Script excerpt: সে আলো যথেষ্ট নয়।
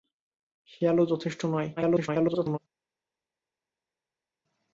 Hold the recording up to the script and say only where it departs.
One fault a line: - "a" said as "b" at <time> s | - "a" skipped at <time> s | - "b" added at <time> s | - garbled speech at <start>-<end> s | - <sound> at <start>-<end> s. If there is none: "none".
- garbled speech at 1.8-2.6 s